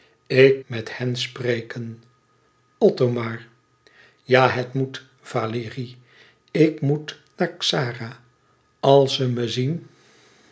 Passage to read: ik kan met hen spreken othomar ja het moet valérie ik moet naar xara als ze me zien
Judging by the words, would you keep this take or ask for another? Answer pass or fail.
fail